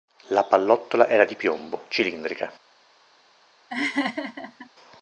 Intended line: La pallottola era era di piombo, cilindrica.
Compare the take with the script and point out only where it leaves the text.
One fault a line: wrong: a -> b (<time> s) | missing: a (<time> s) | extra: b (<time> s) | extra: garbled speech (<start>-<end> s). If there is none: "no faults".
missing: era (1.3 s)